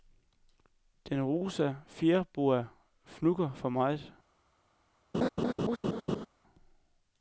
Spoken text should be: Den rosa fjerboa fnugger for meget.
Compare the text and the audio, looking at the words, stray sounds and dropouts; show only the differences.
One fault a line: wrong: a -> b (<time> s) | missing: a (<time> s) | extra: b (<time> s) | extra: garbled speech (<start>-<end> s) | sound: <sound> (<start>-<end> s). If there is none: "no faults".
sound: laugh (5.1-6.3 s)